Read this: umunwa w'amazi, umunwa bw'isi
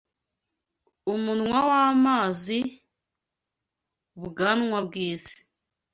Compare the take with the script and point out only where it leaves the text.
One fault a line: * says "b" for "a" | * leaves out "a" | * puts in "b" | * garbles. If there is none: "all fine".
* says "ubwanwa" for "umunwa"